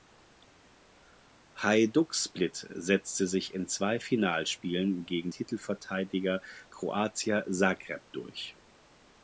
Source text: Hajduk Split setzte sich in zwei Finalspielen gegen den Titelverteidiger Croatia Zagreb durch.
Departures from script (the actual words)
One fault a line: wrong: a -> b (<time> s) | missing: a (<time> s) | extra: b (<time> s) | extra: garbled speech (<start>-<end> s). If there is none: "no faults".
missing: den (5.3 s)